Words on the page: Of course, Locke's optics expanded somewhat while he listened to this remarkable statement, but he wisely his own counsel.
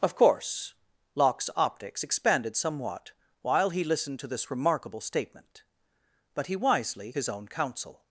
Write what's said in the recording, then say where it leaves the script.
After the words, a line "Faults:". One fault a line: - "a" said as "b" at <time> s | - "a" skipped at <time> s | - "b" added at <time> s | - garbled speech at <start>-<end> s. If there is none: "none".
Of course, Locke's optics expanded somewhat while he listened to this remarkable statement, but he wisely his own counsel.
Faults:
none